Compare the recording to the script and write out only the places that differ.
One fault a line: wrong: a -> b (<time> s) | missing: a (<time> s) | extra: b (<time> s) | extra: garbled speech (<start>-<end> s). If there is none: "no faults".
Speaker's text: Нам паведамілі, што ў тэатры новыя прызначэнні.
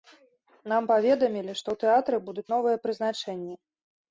extra: будуць (2.3 s)